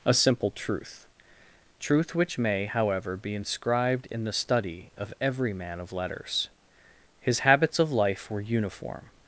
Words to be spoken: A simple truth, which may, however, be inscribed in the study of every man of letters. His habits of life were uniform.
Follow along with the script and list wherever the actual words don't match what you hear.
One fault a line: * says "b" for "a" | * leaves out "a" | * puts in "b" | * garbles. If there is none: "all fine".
* puts in "truth"